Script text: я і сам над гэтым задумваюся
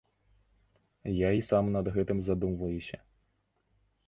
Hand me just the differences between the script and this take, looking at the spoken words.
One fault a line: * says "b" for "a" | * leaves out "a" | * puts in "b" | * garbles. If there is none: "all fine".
all fine